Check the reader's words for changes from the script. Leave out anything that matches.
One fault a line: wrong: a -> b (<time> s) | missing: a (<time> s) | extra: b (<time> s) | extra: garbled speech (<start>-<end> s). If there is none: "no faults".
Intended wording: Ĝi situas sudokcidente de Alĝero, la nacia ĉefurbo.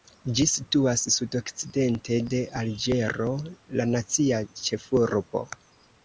no faults